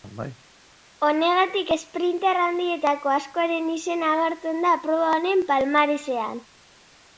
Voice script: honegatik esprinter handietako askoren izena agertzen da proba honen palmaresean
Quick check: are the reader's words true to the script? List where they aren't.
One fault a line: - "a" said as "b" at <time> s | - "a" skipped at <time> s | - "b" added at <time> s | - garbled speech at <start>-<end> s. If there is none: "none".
none